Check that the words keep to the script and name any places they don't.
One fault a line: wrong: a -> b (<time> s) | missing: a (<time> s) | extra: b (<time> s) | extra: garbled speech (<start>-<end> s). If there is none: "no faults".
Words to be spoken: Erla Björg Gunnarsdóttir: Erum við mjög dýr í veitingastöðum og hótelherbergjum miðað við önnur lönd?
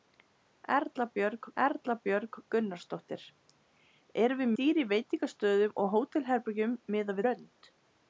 extra: erla Björg (1.6 s)
missing: mjög (4.5 s)
missing: við önnur (7.2 s)